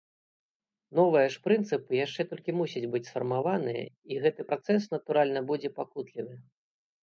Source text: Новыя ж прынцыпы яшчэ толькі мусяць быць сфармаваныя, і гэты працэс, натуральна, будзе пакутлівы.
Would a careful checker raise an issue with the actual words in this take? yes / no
no